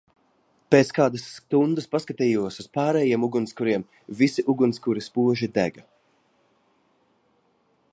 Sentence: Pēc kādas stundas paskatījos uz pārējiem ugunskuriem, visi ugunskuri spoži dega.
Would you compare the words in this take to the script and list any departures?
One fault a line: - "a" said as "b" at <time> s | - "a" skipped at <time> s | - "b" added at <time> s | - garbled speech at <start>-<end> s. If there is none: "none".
none